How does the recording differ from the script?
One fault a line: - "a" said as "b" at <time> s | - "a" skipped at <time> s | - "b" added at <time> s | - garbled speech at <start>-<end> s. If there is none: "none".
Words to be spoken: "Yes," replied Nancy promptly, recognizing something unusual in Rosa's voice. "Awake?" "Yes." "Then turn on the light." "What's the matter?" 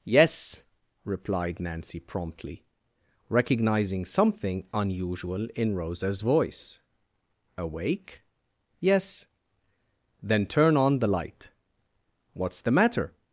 none